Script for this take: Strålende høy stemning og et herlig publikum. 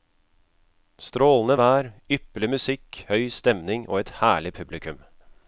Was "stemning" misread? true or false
false